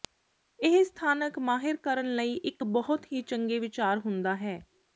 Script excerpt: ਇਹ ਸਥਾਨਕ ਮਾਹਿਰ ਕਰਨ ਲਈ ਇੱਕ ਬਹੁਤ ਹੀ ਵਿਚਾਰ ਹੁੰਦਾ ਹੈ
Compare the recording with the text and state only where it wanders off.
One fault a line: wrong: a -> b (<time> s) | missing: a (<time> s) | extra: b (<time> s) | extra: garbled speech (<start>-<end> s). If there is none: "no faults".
extra: ਚੰਗੇ (3.2 s)